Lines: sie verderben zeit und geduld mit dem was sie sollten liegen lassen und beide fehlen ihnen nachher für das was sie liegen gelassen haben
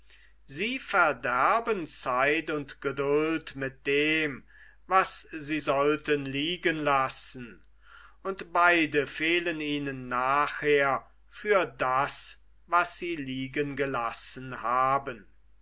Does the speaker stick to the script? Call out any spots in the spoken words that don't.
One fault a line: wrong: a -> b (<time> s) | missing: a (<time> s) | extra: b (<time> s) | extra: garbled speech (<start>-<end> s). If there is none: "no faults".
no faults